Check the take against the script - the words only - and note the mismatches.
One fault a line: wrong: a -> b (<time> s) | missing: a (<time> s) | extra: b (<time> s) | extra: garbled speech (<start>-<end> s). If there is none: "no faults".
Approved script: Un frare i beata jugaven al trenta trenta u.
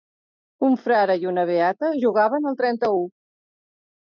extra: una (1.3 s)
missing: trenta (2.9 s)